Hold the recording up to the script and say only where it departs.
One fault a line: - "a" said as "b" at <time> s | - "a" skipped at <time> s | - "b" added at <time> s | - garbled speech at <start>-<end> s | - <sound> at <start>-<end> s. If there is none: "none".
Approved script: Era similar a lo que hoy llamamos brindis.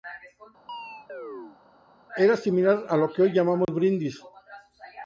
- chirp at 0.7-1.6 s
- dropout at 3.6-3.7 s